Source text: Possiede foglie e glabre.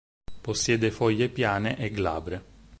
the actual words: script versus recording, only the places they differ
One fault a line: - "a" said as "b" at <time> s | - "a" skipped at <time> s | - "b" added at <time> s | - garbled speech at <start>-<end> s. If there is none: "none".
- "piane" added at 1.3 s